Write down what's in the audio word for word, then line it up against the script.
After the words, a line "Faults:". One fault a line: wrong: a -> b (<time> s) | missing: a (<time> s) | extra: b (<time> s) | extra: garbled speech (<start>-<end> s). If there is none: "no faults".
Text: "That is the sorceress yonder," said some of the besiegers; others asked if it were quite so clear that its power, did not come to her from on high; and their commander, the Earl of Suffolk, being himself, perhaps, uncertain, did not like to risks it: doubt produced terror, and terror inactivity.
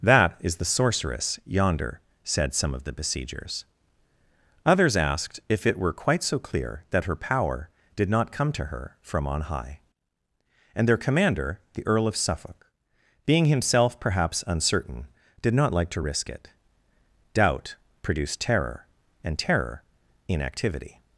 "That is the sorceress yonder," said some of the besiegers; others asked if it were quite so clear that her power, did not come to her from on high; and their commander, the Earl of Suffolk, being himself, perhaps, uncertain, did not like to risk it: doubt produced terror, and terror inactivity.
Faults:
wrong: its -> her (7.0 s)
wrong: risks -> risk (16.0 s)